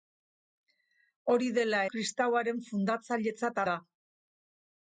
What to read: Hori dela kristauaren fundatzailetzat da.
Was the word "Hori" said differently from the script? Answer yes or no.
no